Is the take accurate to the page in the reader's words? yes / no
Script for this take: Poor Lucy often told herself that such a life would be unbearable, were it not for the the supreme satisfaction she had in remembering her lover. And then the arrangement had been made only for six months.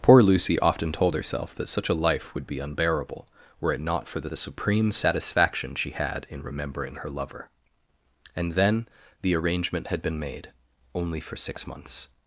yes